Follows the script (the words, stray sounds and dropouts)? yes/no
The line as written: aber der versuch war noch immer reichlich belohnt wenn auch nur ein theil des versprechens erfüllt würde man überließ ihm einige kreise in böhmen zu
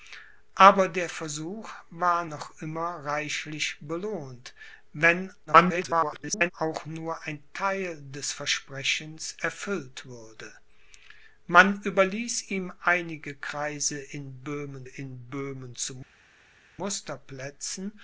no